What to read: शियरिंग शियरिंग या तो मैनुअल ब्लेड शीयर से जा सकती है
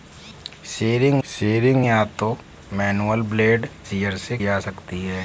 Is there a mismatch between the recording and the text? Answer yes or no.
no